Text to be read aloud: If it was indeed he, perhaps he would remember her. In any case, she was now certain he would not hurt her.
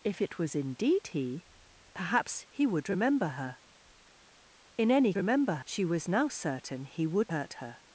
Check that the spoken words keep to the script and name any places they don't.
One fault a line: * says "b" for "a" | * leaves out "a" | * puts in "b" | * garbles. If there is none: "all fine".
* says "remember" for "case"
* leaves out "not"